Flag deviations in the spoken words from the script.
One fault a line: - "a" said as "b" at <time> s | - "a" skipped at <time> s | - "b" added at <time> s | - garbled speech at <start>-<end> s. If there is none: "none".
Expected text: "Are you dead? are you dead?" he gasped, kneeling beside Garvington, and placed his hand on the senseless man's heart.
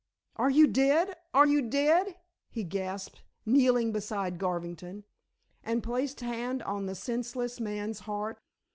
- "his" skipped at 6.2 s